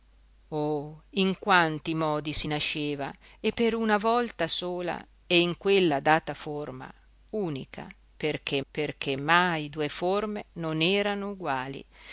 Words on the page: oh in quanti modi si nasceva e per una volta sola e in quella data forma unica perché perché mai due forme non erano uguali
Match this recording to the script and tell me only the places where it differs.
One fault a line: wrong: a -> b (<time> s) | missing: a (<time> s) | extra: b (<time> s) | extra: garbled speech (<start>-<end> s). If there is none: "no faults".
no faults